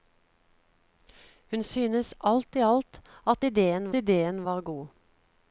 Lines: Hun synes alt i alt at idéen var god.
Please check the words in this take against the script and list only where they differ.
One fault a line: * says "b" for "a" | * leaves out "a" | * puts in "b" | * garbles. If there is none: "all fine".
* puts in "idéen"